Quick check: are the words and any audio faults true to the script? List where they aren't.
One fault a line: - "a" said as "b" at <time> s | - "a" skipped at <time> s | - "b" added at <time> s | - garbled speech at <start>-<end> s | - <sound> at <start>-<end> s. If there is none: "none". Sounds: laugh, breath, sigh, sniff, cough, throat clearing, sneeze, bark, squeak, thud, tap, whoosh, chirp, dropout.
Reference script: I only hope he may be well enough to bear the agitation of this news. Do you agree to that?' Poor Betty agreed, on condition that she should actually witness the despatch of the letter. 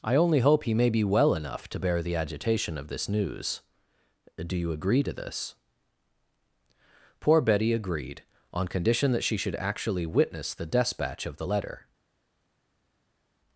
- "that" said as "this" at 5.1 s